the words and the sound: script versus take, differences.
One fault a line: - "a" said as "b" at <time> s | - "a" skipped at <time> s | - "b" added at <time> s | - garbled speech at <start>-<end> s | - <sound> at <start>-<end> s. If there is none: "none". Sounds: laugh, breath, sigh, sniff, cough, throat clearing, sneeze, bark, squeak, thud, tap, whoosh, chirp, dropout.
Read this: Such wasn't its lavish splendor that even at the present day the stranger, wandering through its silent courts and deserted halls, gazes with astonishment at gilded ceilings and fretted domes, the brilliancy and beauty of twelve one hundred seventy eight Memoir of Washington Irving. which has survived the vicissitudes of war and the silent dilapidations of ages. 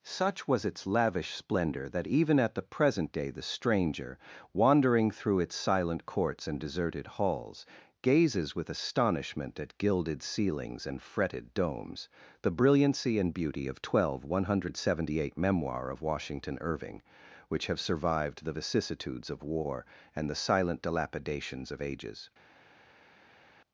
- "wasn't" said as "was" at 0.5 s
- "has" said as "have" at 17.7 s